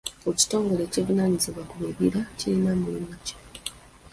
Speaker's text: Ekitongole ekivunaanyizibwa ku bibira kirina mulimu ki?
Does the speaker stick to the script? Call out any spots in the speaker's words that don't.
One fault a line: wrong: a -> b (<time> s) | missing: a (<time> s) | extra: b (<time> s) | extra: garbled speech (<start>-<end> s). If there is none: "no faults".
no faults